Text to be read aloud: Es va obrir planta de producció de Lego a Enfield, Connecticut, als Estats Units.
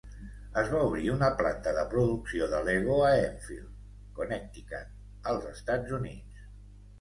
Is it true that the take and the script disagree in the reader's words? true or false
true